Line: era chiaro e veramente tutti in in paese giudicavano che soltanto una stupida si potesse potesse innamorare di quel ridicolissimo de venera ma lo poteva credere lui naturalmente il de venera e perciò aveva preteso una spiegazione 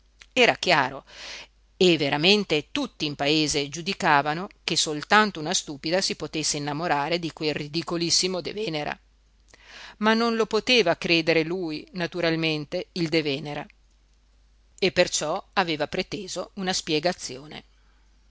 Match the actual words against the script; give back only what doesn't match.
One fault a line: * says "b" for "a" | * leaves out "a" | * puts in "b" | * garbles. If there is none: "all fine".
* leaves out "in"
* leaves out "potesse"
* puts in "non"